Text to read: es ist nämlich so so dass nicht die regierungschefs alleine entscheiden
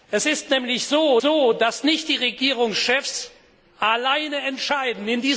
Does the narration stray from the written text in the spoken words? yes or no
no